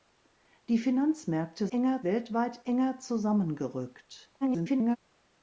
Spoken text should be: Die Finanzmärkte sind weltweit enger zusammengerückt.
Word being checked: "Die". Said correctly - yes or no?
yes